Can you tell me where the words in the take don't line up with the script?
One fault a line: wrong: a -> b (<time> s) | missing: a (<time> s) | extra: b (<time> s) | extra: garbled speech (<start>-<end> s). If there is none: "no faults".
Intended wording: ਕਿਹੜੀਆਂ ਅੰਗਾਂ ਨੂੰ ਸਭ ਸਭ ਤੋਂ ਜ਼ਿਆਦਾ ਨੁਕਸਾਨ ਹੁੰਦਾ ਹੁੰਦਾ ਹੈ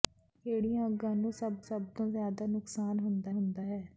no faults